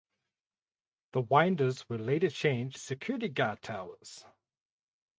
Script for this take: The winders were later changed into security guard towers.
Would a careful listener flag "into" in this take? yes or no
yes